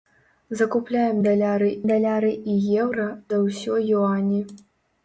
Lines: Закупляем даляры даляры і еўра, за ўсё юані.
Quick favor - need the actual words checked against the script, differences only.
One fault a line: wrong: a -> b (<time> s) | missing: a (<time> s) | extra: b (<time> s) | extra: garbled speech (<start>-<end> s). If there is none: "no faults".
no faults